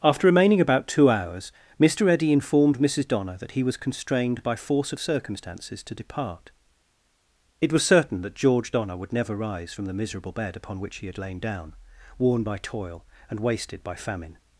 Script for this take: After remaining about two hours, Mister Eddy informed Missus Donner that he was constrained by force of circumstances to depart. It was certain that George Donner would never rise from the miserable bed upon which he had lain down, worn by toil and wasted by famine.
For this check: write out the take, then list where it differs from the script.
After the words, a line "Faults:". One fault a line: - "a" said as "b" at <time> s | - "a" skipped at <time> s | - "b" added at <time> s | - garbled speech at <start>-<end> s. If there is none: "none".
After remaining about two hours, Mister Eddy informed Missus Donner that he was constrained by force of circumstances to depart. It was certain that George Donner would never rise from the miserable bed upon which he had lain down, worn by toil and wasted by famine.
Faults:
none